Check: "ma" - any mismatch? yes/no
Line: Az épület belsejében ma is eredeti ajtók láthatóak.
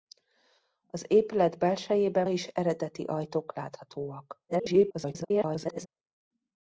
yes